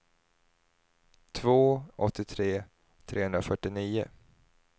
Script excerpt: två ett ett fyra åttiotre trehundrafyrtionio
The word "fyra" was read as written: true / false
false